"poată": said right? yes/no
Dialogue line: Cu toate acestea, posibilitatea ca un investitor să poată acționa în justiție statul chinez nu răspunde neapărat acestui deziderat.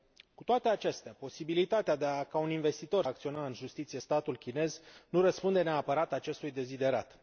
no